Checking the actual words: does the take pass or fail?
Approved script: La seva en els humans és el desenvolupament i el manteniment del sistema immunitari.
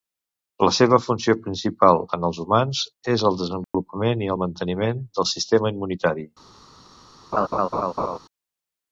fail